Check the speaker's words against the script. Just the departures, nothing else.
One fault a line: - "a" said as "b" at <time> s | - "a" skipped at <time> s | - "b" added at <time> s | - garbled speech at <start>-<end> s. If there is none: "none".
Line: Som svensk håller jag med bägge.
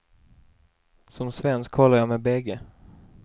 none